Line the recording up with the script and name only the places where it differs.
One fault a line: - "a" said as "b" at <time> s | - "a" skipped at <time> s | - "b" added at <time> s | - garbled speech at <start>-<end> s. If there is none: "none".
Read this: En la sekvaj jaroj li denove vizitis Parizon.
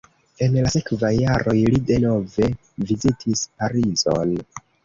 none